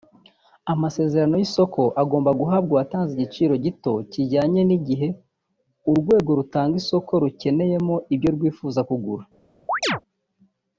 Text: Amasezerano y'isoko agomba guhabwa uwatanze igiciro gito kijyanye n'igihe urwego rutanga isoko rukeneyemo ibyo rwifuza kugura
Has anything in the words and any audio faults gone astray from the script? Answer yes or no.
yes